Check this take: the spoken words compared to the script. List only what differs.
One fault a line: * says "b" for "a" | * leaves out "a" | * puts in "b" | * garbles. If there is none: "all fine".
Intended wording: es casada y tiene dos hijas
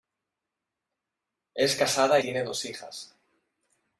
* leaves out "y"